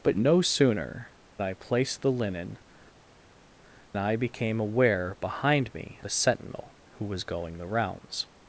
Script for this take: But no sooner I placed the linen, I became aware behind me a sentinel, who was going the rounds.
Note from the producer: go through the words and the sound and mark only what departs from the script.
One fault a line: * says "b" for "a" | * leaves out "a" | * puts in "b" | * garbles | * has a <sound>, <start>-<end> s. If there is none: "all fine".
all fine